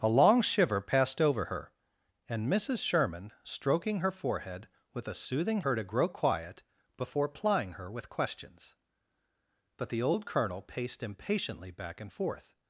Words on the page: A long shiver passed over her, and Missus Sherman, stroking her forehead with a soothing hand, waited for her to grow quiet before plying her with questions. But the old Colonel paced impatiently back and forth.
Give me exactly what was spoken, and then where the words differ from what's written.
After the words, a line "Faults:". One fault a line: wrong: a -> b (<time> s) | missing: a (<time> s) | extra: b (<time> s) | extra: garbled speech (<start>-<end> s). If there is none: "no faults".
A long shiver passed over her, and Missus Sherman, stroking her forehead with a soothing her to grow quiet before plying her with questions. But the old Colonel paced impatiently back and forth.
Faults:
missing: hand waited for (5.6 s)